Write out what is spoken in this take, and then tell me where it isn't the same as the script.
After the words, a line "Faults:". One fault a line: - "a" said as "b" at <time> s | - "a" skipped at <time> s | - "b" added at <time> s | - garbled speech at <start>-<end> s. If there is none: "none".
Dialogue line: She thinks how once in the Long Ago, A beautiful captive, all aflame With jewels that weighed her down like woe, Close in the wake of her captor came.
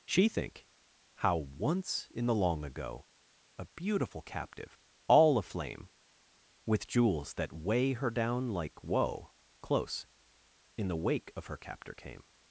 She think how once in the Long Ago, A beautiful captive, all aflame With jewels that weigh her down like woe, Close in the wake of her captor came.
Faults:
- "thinks" said as "think" at 0.3 s
- "weighed" said as "weigh" at 7.5 s